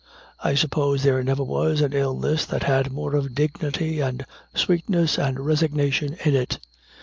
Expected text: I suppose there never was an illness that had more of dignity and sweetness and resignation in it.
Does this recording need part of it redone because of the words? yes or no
no